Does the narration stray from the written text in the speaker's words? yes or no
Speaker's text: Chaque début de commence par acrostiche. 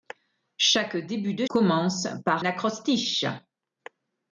no